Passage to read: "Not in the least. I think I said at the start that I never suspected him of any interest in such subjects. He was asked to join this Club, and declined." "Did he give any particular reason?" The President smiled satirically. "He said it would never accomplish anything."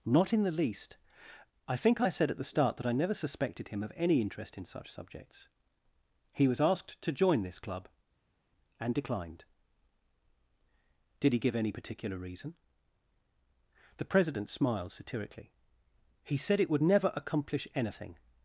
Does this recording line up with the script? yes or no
yes